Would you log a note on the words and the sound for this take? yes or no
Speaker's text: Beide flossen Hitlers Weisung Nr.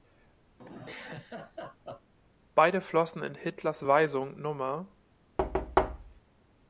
yes